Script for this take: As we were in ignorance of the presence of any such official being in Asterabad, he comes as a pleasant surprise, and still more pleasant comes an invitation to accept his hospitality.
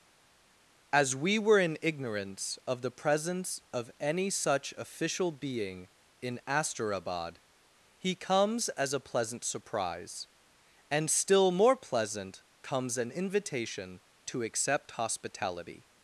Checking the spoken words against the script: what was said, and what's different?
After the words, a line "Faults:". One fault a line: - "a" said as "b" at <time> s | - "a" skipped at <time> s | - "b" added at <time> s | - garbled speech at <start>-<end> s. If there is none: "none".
As we were in ignorance of the presence of any such official being in Asterabad, he comes as a pleasant surprise, and still more pleasant comes an invitation to accept hospitality.
Faults:
- "his" skipped at 14.9 s